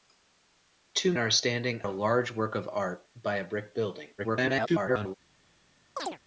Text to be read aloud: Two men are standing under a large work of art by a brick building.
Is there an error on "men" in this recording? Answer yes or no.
yes